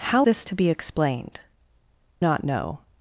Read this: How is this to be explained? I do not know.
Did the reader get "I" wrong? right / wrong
wrong